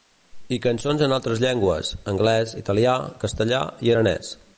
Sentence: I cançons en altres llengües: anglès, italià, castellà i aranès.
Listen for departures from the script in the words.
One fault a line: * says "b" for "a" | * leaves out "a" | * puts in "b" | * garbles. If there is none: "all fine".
all fine